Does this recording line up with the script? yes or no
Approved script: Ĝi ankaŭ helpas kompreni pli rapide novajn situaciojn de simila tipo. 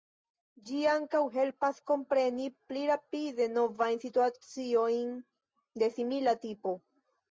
yes